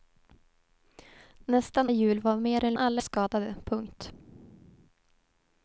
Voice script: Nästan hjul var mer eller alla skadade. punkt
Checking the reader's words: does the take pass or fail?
pass